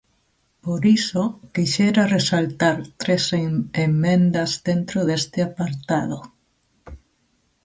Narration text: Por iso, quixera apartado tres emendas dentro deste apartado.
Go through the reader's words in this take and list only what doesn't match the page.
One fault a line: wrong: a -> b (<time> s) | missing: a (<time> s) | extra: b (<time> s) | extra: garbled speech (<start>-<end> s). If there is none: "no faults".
wrong: apartado -> resaltar (2.2 s)